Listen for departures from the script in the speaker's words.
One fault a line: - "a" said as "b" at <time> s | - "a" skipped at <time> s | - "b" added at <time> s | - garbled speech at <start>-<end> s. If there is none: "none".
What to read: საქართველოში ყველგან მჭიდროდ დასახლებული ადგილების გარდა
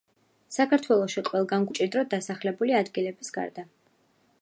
none